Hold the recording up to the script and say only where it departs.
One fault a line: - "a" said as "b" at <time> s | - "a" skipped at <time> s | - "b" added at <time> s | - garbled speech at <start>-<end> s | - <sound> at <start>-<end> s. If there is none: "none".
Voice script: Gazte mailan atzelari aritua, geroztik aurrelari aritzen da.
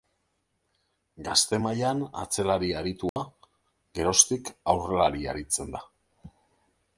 - dropout at 3.1-3.2 s